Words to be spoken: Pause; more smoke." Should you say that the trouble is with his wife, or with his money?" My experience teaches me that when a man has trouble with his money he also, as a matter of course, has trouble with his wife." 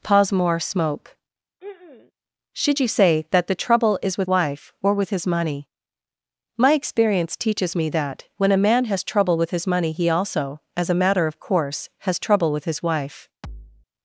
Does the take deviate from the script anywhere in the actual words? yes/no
yes